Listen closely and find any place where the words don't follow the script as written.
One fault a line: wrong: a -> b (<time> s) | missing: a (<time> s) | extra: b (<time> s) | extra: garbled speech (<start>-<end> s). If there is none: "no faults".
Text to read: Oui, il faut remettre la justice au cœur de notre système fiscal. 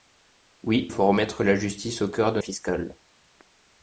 missing: il (0.9 s)
missing: notre système (2.4 s)